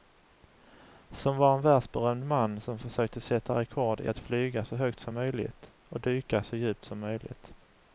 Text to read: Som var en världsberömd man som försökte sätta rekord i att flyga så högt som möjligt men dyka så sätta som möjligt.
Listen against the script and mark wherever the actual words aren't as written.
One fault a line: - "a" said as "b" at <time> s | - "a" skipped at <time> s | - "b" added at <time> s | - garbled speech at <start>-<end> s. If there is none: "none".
- "men" said as "och" at 5.9 s
- "sätta" said as "djupt" at 6.6 s